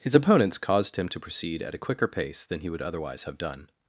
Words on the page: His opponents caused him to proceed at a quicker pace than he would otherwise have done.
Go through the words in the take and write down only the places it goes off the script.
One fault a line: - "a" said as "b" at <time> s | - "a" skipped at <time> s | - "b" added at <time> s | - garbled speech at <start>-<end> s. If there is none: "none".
none